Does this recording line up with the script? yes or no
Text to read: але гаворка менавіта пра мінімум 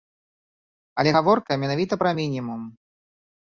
yes